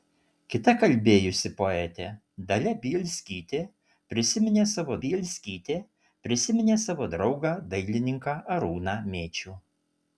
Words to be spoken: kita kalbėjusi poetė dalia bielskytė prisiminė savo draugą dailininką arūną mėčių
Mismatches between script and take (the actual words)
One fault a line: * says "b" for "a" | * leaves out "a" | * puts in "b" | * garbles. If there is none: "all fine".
* puts in "bielskytė prisiminė savo"